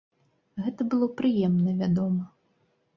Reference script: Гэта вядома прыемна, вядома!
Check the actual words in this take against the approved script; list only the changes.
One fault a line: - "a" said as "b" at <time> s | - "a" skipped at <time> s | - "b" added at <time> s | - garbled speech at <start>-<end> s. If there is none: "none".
- "вядома" said as "было" at 0.9 s